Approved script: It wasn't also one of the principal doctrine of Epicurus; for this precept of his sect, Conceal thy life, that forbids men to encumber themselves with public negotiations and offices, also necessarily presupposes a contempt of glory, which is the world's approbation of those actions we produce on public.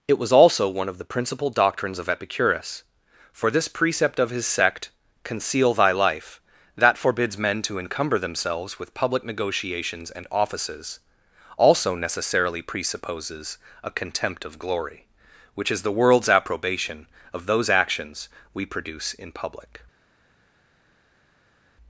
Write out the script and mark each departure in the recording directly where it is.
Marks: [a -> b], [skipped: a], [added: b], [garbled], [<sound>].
It [wasn't -> was] also one of the principal [doctrine -> doctrines] of Epicurus; for this precept of his sect, Conceal thy life, that forbids men to encumber themselves with public negotiations and offices, also necessarily presupposes a contempt of glory, which is the world's approbation of those actions we produce [on -> in] public.